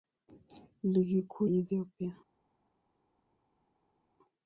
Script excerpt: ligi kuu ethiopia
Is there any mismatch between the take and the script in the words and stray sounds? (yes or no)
no